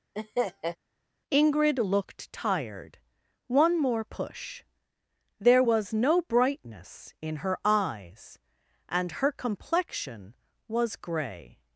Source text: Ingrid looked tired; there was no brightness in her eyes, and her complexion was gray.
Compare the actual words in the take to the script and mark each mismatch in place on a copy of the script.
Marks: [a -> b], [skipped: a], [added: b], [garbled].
Ingrid looked tired; [added: one more push] there was no brightness in her eyes, and her complexion was gray.